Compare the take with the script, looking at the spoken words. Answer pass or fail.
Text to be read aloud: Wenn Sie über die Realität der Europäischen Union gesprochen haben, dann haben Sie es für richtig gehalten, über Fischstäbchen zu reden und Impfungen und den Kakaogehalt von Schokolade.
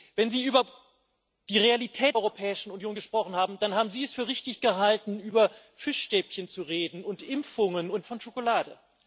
fail